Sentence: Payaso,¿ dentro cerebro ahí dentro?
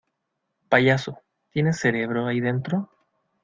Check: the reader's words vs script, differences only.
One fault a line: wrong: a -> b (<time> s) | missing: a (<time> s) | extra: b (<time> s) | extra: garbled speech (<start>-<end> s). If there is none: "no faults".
wrong: dentro -> tienes (1.5 s)